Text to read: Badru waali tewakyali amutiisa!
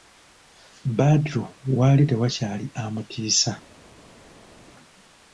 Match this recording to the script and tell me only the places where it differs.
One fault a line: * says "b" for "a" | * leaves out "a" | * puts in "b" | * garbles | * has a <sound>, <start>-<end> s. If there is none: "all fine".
all fine